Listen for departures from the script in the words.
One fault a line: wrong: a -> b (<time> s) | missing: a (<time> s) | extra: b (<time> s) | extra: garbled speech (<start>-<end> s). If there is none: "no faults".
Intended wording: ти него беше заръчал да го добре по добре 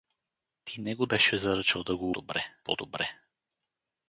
no faults